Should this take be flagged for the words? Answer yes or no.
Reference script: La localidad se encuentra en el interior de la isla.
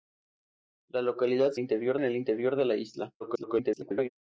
yes